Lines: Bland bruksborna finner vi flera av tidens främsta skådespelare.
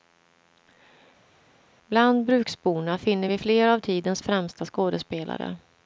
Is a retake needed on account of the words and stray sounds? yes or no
no